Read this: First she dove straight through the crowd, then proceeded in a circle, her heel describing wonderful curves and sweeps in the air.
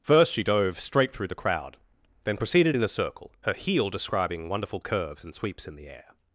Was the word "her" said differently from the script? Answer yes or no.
no